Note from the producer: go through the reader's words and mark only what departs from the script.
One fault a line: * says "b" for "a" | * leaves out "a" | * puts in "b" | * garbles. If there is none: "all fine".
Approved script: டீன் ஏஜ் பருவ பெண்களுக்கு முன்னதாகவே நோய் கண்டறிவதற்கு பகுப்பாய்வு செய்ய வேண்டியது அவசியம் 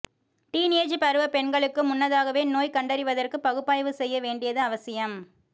all fine